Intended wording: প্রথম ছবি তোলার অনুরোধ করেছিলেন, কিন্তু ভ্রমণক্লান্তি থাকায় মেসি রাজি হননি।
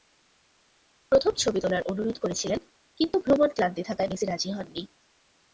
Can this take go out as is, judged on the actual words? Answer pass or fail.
pass